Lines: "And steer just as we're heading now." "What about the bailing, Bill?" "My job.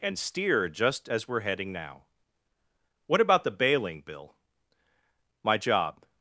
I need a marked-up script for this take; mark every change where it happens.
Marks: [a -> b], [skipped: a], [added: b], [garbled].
"And steer just as we're heading now." "What about the bailing, Bill?" "My job.